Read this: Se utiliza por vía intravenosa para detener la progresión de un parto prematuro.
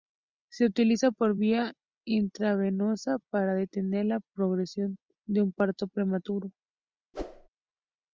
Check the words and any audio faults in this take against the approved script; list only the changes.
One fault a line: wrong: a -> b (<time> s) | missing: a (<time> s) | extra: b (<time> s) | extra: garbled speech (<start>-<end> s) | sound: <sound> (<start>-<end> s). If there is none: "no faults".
sound: whoosh (7.1-7.5 s)